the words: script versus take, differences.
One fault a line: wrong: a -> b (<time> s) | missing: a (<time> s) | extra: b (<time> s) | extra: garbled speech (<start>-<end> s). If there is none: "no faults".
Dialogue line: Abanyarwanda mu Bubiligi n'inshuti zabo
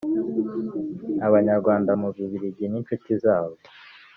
no faults